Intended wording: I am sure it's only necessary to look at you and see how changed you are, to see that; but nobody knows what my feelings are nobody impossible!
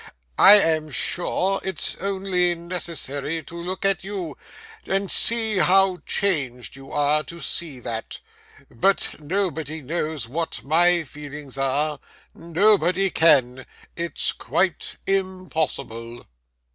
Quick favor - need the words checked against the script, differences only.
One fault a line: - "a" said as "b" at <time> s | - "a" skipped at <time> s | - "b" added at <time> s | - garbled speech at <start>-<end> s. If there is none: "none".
- "can it's quite" added at 13.1 s